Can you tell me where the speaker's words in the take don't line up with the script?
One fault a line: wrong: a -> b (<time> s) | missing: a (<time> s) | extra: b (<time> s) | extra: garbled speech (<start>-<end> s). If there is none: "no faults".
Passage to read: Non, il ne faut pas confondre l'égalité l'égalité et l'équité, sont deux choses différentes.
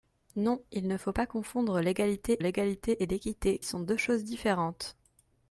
no faults